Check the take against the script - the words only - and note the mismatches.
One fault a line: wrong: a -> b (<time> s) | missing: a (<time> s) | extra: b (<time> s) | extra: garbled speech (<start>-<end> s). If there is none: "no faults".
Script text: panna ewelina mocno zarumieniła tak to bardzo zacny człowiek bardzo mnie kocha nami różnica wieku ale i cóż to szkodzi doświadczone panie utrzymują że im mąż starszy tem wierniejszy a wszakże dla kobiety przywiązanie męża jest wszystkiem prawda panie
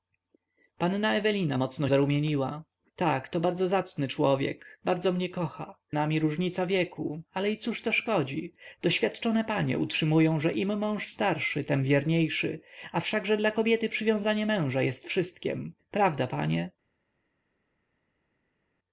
no faults